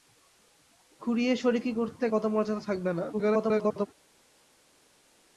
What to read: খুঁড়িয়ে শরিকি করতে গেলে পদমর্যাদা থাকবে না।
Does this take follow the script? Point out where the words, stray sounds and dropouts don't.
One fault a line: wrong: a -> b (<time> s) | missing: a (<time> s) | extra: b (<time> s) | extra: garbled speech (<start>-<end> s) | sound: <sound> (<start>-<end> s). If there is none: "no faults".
missing: গেলে (2.0 s)
extra: garbled speech (3.1-3.9 s)